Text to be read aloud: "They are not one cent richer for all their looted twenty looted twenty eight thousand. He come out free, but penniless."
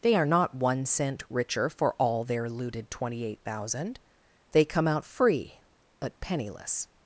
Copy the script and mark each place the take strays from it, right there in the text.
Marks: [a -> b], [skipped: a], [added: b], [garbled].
"They are not one cent richer for all their looted twenty [skipped: looted twenty] eight thousand. [He -> They] come out free, but penniless."